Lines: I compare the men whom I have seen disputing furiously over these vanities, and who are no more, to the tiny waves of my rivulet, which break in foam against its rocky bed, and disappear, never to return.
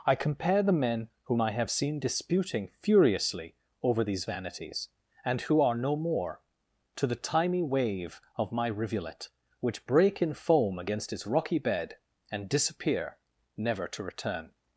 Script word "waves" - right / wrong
wrong